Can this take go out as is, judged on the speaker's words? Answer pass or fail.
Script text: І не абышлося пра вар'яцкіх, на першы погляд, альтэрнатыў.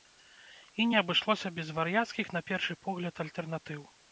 fail